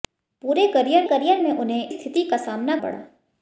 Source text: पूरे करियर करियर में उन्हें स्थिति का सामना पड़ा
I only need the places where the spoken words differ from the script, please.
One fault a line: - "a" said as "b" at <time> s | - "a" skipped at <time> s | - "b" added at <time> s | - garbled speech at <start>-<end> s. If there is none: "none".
none